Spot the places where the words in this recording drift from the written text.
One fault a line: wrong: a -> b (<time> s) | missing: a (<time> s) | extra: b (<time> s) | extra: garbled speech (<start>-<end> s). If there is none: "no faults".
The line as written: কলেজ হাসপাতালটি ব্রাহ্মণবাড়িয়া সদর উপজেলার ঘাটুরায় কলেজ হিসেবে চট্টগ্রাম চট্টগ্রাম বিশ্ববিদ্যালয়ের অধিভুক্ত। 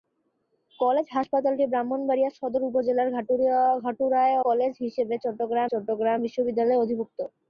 no faults